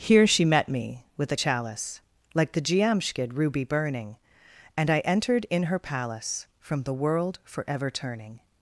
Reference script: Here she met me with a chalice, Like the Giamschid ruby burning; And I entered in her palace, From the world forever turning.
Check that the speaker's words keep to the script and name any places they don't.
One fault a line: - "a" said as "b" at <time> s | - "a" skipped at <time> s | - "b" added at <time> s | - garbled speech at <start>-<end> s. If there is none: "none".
none